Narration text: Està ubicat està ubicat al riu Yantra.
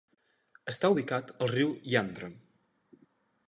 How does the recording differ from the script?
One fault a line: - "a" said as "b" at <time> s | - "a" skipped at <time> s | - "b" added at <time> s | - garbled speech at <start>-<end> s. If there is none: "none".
- "està ubicat" skipped at 1.3 s